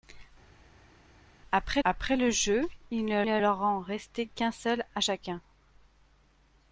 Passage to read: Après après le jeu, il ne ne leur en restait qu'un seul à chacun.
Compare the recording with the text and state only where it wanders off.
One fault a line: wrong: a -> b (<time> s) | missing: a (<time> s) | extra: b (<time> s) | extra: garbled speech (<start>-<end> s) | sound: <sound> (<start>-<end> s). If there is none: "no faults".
no faults